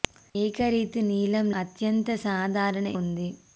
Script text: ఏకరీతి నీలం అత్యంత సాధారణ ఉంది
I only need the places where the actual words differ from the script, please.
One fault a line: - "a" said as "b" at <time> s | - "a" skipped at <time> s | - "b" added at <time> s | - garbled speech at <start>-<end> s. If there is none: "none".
none